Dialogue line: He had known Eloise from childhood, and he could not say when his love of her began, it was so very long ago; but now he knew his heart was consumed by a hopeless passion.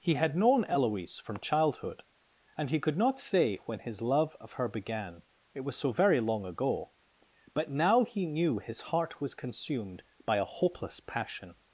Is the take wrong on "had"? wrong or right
right